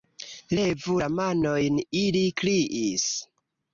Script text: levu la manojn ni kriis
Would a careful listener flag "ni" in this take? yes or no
yes